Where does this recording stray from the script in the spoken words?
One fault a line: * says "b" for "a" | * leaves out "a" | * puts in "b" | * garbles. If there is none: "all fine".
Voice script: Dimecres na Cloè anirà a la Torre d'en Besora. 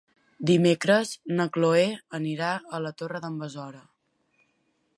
all fine